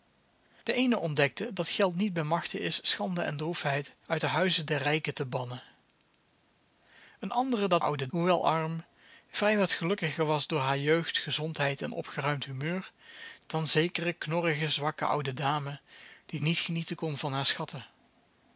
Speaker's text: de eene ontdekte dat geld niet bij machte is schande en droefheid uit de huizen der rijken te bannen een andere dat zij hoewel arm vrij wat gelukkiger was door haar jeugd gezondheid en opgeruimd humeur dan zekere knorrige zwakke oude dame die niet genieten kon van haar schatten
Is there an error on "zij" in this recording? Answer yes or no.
yes